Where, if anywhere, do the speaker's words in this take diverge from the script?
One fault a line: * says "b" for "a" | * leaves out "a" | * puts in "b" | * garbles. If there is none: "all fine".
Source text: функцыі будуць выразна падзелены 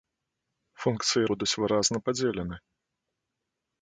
all fine